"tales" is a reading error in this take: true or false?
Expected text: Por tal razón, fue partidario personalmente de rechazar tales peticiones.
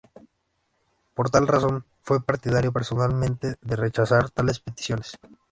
false